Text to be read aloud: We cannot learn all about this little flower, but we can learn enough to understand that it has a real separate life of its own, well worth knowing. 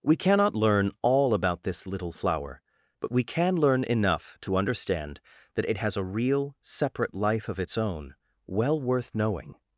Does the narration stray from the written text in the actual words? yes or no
no